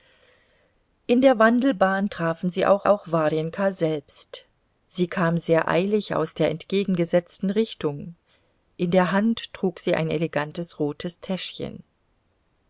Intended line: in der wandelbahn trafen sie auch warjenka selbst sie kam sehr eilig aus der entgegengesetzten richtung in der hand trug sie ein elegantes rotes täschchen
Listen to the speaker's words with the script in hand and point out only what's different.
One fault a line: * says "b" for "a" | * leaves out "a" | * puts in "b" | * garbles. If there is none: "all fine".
* puts in "auch"